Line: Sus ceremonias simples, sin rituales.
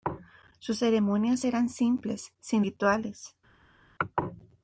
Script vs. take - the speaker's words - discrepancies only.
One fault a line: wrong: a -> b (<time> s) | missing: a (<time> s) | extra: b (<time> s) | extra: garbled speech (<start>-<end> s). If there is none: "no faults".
extra: eran (1.4 s)